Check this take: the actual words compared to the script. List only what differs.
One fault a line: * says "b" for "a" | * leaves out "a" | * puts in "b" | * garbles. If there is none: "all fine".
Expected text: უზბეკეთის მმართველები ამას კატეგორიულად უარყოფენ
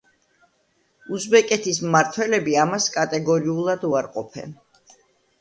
all fine